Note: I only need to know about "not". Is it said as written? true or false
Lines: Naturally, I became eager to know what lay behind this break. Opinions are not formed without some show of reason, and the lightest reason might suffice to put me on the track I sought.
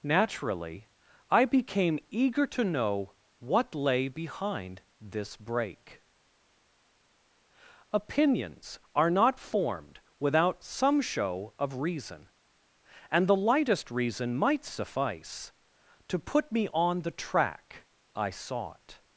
true